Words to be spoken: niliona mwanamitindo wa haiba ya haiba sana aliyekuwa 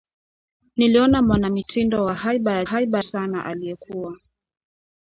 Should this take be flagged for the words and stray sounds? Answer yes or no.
no